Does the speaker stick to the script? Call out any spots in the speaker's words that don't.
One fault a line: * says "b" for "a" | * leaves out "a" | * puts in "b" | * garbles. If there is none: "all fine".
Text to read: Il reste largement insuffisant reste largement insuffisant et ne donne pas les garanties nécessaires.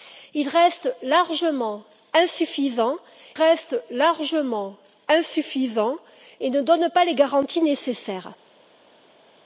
all fine